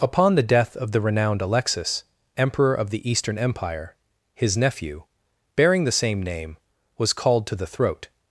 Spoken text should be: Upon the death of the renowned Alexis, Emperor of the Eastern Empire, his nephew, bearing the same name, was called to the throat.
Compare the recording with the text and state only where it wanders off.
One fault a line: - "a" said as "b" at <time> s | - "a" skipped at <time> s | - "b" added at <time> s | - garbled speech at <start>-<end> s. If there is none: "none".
none